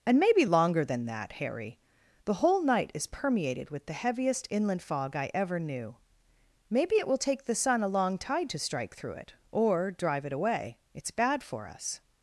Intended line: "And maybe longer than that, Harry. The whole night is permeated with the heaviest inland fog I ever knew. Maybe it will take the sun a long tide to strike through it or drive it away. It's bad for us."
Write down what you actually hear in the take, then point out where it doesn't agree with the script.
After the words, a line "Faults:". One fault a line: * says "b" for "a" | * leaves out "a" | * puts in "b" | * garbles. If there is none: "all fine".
"And maybe longer than that, Harry. The whole night is permeated with the heaviest inland fog I ever knew. Maybe it will take the sun a long tide to strike through it or drive it away. It's bad for us."
Faults:
all fine